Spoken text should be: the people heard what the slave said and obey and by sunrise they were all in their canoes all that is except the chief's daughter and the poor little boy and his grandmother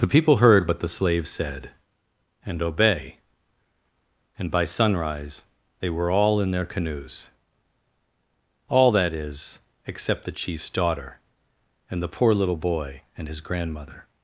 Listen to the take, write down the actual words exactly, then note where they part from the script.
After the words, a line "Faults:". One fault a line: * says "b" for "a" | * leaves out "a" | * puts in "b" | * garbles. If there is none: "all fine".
the people heard what the slave said and obey and by sunrise they were all in their canoes all that is except the chief's daughter and the poor little boy and his grandmother
Faults:
all fine